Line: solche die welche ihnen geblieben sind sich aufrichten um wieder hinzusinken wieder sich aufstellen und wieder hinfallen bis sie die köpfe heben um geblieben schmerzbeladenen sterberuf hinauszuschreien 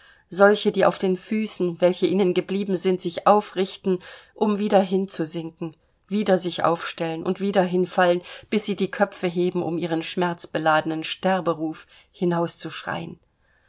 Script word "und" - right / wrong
right